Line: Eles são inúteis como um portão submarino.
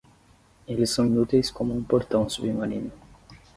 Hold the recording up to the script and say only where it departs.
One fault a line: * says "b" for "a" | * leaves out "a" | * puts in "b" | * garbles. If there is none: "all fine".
all fine